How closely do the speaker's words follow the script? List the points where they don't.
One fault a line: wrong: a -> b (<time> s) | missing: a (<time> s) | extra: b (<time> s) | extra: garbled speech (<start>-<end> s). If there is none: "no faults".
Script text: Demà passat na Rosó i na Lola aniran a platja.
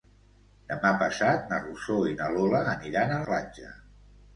no faults